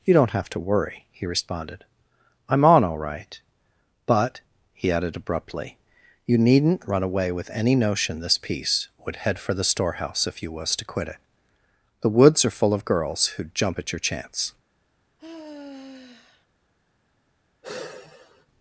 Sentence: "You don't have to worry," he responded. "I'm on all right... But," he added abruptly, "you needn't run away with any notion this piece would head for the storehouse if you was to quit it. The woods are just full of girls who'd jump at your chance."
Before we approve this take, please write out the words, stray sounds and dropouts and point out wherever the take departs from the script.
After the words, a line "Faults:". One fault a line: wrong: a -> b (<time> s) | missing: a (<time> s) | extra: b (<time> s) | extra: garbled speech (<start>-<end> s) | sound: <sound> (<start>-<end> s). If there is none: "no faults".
"You don't have to worry," he responded. "I'm on all right... But," he added abruptly, "you needn't run away with any notion this piece would head for the storehouse if you was to quit it. The woods are full of girls who'd jump at your chance."
Faults:
missing: just (12.6 s)
sound: sigh (15.2-16.5 s)
sound: sigh (17.6-18.5 s)